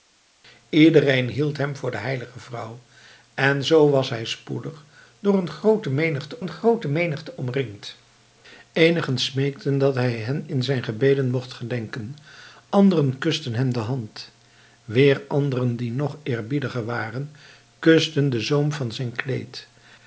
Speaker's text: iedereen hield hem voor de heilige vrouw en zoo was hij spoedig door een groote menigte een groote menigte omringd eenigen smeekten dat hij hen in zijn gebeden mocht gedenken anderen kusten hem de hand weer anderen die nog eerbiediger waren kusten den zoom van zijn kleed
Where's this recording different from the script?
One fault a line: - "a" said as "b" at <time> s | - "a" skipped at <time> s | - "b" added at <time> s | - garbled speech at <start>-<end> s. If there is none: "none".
none